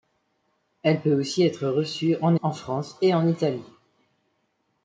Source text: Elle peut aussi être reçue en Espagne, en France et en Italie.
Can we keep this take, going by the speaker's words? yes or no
no